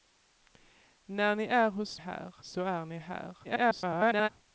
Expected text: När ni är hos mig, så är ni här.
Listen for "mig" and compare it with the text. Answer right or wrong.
wrong